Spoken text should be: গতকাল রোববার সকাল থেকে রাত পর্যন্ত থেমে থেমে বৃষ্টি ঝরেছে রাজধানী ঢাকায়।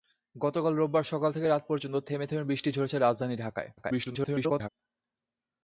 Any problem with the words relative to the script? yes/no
yes